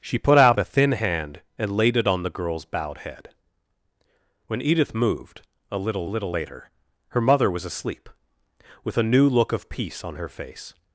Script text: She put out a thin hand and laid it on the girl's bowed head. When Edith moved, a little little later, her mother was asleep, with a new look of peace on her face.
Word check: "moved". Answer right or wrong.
right